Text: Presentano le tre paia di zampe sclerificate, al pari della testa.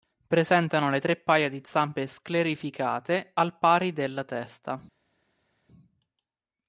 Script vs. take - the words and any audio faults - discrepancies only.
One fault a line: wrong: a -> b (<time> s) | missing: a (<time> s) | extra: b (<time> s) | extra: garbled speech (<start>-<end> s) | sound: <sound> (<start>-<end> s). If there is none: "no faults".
no faults